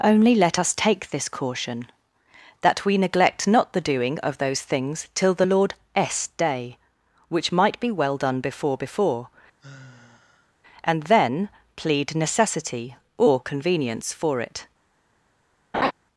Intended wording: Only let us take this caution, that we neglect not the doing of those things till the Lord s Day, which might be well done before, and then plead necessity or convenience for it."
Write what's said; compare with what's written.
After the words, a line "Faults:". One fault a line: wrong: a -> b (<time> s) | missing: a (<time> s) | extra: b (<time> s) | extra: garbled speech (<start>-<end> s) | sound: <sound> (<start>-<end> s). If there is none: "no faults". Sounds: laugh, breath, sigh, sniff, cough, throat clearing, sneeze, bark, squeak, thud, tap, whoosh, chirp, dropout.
Only let us take this caution, that we neglect not the doing of those things till the Lord s Day, which might be well done before before, and then plead necessity or convenience for it."
Faults:
extra: before (8.8 s)
sound: sigh (9.6-10.5 s)
sound: laugh (15.7-15.9 s)